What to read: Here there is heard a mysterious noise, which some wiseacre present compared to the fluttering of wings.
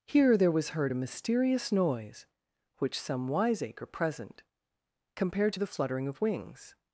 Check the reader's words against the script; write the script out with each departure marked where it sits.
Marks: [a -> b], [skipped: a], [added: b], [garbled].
Here there [is -> was] heard a mysterious noise, which some wiseacre present compared to the fluttering of wings.